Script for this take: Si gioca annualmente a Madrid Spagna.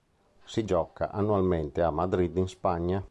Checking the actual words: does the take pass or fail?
fail